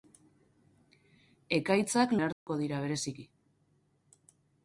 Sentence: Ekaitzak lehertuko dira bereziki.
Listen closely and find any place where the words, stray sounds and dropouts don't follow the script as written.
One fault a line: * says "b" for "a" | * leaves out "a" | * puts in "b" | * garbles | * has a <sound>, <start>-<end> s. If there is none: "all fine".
* has a dropout, 2.3-2.5 s